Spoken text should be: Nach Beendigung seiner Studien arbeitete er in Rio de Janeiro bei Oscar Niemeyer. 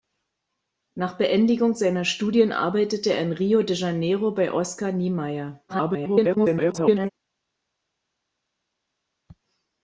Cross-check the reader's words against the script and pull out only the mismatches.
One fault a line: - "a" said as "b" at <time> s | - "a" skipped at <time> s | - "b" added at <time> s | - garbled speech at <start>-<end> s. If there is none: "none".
- garbled speech at 5.7-7.1 s